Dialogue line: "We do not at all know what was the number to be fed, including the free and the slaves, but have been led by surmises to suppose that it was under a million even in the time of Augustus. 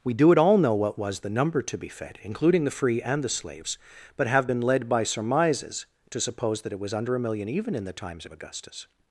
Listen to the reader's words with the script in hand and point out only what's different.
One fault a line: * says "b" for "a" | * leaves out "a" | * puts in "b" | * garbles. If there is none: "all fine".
* leaves out "not"
* says "times" for "time"